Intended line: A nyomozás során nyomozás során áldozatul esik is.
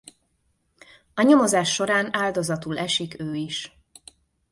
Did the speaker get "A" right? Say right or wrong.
right